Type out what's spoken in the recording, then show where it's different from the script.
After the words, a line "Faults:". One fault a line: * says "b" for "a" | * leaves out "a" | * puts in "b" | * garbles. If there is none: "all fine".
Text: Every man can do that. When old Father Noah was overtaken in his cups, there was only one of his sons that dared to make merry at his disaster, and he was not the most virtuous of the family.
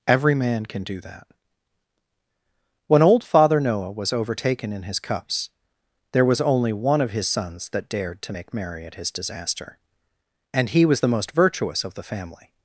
Every man can do that. When old Father Noah was overtaken in his cups, there was only one of his sons that dared to make merry at his disaster, and he was the most virtuous of the family.
Faults:
* leaves out "not"